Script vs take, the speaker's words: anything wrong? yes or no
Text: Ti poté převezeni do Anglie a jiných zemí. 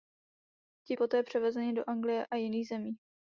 no